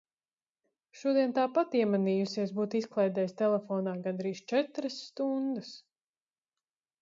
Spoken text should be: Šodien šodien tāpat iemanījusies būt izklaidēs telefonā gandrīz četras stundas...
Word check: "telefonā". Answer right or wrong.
right